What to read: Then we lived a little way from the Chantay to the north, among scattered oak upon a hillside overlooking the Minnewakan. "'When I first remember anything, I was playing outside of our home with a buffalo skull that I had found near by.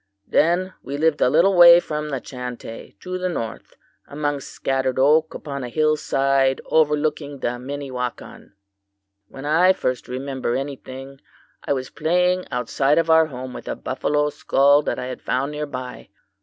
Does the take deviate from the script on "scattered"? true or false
false